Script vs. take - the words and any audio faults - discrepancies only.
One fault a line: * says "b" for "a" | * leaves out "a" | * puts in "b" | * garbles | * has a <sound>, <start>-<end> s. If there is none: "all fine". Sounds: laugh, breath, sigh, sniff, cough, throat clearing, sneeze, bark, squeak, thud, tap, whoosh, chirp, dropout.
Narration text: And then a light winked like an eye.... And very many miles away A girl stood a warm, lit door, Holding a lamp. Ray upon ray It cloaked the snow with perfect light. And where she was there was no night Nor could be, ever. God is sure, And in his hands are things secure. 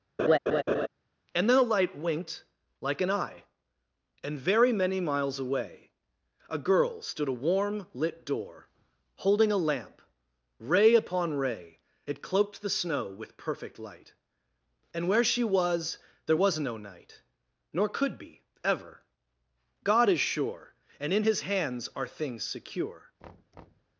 * has a laugh, 0.2-0.9 s
* has a thud, 23.2-24.0 s